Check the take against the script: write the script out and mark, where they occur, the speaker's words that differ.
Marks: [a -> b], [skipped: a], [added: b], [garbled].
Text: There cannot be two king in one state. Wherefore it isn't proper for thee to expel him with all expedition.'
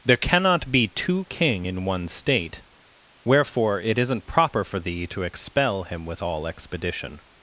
There cannot be two king in one state. Wherefore it isn't proper for thee to expel him with all expedition.'